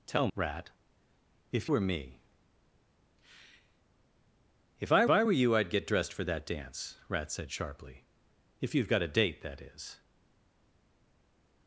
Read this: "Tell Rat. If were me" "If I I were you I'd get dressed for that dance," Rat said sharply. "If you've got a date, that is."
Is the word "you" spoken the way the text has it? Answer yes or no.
yes